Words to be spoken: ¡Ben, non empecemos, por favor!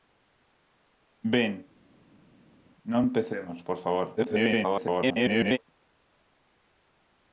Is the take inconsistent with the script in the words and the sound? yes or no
yes